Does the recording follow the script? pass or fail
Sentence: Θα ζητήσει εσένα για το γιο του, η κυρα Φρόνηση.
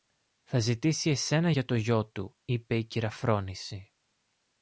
fail